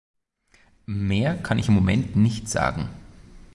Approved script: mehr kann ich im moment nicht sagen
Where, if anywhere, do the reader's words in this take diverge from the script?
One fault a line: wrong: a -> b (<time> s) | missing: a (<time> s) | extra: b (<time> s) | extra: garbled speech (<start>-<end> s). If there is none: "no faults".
no faults